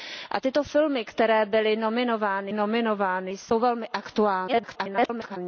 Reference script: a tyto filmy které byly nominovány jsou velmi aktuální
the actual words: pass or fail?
fail